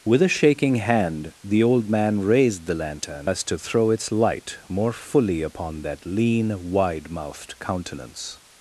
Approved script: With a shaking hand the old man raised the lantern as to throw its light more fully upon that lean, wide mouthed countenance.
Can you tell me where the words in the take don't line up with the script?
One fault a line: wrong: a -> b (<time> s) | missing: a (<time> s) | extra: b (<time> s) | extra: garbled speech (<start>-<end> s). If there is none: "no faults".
no faults